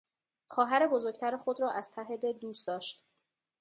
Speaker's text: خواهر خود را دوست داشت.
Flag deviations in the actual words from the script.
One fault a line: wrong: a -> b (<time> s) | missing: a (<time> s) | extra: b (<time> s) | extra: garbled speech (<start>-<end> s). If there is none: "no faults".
extra: بزرگتر (0.9 s)
extra: از ته دل (1.7 s)